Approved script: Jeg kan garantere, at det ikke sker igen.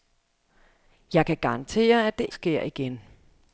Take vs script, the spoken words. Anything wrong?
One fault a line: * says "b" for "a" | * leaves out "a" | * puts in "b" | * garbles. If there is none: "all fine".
* leaves out "ikke"